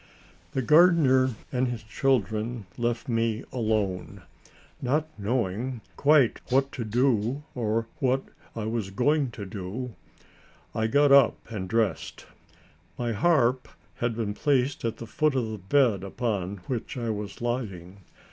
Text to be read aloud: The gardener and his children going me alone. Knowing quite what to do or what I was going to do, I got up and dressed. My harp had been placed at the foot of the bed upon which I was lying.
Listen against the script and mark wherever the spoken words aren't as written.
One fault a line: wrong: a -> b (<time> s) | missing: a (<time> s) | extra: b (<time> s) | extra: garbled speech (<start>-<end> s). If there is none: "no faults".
wrong: going -> left (2.8 s)
extra: Not (4.8 s)